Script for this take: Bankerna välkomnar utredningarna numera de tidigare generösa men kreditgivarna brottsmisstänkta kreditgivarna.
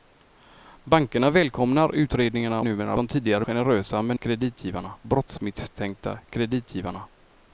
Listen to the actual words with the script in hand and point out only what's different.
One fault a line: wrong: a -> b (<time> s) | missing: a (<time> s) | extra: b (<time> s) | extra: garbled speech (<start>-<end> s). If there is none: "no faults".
no faults